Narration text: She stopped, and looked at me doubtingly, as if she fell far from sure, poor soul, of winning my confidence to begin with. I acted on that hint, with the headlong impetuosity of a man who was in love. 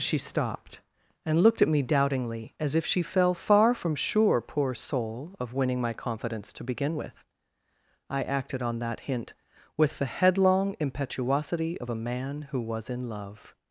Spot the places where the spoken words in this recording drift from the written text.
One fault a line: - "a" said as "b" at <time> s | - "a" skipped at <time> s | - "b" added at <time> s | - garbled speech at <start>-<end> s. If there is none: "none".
none